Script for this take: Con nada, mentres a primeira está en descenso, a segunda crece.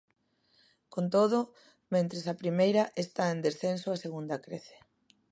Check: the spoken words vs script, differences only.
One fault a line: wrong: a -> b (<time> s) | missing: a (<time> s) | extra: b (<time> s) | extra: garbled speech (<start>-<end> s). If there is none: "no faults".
wrong: nada -> todo (1.1 s)